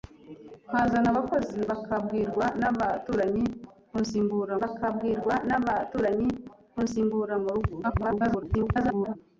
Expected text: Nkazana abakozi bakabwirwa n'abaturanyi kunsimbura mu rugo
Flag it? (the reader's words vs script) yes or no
yes